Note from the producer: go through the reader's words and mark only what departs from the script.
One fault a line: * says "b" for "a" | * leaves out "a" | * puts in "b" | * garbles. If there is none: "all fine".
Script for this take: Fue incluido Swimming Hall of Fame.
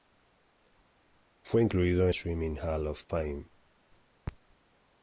all fine